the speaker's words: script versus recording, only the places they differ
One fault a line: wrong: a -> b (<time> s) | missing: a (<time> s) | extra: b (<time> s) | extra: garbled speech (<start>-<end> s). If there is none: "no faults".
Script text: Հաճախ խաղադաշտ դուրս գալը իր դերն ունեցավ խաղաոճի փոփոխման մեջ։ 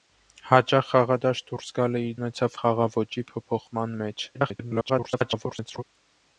missing: դերն (2.1 s)
extra: garbled speech (4.3-5.8 s)